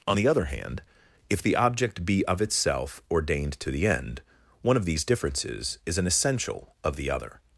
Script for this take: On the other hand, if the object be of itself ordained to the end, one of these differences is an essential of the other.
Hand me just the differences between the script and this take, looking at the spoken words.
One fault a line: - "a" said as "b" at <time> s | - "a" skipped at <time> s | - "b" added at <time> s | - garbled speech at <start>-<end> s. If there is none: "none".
none